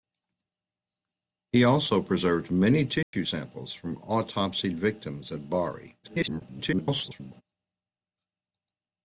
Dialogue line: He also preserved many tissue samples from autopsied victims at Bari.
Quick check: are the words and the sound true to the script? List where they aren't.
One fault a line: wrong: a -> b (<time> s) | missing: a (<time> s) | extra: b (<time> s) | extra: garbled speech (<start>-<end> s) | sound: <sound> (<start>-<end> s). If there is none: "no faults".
sound: dropout (3.0-3.1 s)
extra: garbled speech (6.0-7.4 s)